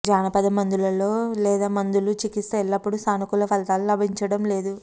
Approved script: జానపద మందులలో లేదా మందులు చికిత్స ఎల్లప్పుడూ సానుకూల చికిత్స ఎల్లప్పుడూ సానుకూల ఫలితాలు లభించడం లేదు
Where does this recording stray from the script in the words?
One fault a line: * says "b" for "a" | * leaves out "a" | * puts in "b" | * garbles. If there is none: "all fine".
* leaves out "చికిత్స ఎల్లప్పుడూ సానుకూల"